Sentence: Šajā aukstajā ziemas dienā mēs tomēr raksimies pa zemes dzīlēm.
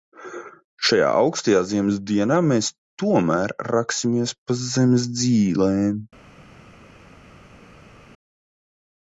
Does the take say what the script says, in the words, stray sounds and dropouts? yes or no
yes